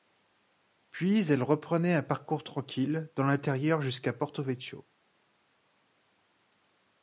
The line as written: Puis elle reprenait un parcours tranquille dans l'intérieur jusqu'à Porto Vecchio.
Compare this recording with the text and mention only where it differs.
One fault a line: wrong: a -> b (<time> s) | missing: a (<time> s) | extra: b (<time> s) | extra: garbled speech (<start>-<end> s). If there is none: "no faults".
no faults